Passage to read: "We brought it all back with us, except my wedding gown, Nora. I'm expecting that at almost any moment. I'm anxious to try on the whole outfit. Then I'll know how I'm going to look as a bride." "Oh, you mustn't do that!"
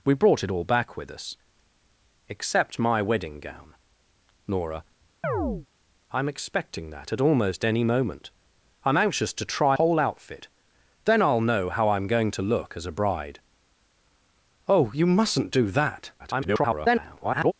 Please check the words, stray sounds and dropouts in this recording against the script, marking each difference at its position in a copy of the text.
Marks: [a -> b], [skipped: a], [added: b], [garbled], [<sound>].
"We brought it all back with us, except my wedding gown, Nora. [chirp] I'm expecting that at almost any moment. I'm anxious to try [skipped: on the] whole outfit. Then I'll know how I'm going to look as a bride." "Oh, you mustn't do that!" [garbled]